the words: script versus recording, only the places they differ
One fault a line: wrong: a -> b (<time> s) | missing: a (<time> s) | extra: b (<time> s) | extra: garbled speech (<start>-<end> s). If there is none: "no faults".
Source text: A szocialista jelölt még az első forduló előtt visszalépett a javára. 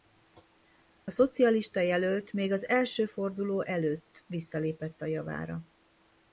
no faults